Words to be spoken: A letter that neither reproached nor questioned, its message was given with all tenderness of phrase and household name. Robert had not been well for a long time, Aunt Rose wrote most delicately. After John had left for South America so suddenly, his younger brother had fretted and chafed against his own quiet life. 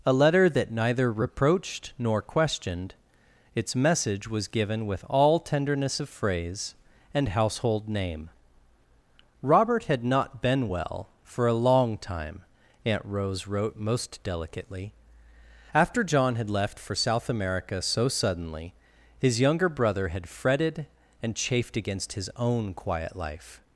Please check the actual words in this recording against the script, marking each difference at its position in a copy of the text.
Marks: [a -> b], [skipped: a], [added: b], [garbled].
A letter that neither reproached nor questioned, its message was given with all tenderness of phrase and household name. Robert had not been well for a long time, Aunt Rose wrote most delicately. After John had left for South America so suddenly, his younger brother had fretted and chafed against his own quiet life.